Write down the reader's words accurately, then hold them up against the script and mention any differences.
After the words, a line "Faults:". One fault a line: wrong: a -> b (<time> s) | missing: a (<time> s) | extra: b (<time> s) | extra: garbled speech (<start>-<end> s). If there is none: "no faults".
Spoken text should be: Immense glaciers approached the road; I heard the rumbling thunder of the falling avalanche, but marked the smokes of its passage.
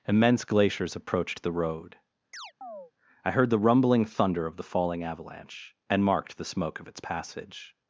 Immense glaciers approached the road; I heard the rumbling thunder of the falling avalanche, and marked the smoke of its passage.
Faults:
wrong: but -> and (5.9 s)
wrong: smokes -> smoke (6.4 s)